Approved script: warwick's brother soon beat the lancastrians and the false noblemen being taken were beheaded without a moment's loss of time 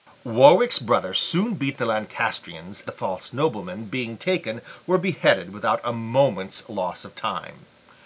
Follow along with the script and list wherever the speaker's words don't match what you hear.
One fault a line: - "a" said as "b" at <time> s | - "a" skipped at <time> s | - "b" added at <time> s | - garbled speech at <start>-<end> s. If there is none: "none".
- "and" skipped at 2.9 s